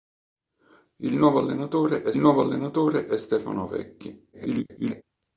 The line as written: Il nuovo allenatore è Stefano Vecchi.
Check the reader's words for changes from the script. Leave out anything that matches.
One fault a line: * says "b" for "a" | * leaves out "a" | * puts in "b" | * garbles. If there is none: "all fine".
* puts in "nuovo allenatore è"
* garbles